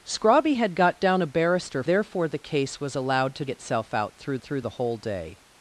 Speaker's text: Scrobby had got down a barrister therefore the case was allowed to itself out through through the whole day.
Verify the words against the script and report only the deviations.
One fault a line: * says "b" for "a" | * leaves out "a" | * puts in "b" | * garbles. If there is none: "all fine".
all fine